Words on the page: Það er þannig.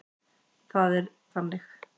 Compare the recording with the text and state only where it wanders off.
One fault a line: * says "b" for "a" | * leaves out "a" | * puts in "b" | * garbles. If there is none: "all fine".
all fine